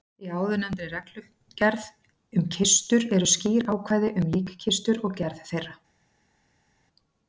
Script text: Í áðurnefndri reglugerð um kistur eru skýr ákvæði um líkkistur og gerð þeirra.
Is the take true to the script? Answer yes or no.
yes